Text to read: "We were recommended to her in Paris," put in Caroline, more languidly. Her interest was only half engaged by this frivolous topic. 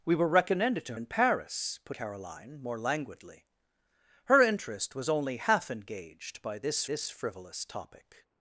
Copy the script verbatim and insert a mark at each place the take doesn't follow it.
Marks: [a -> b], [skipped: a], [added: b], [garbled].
"We were recommended to [skipped: her] in Paris," put [skipped: in] Caroline, more languidly. Her interest was only half engaged by this [added: this] frivolous topic.